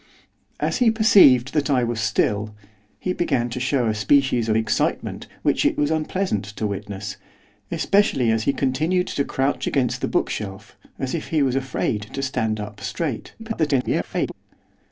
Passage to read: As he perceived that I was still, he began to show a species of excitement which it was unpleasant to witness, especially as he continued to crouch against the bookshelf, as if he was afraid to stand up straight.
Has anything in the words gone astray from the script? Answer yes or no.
yes